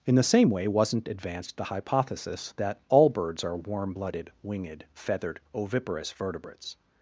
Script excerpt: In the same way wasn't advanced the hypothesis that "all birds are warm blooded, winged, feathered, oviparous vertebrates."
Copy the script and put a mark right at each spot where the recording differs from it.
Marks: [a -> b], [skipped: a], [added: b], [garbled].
In the same way wasn't advanced the hypothesis that "all birds are warm blooded, winged, feathered, oviparous vertebrates."